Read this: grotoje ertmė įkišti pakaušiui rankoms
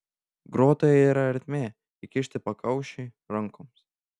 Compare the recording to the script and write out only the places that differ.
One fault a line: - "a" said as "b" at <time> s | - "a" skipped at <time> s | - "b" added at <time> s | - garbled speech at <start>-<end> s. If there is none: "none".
- "yra" added at 1.1 s